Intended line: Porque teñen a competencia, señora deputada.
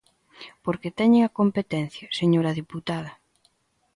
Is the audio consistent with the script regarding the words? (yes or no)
yes